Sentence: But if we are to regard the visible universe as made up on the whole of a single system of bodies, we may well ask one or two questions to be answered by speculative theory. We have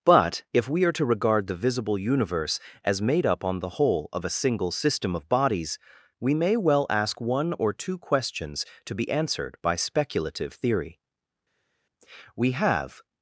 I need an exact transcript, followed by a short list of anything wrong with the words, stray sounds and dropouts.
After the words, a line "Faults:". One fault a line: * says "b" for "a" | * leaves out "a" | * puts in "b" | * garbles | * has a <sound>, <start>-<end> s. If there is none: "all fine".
But if we are to regard the visible universe as made up on the whole of a single system of bodies, we may well ask one or two questions to be answered by speculative theory. We have
Faults:
all fine